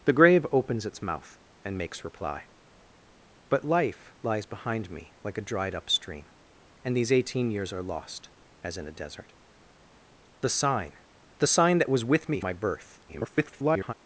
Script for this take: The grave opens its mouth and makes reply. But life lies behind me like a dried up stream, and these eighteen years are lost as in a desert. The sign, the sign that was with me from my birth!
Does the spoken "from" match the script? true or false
false